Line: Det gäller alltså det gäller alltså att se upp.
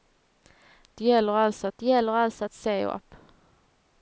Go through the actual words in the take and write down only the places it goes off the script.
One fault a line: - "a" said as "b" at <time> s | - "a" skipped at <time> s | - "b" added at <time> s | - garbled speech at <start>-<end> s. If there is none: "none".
none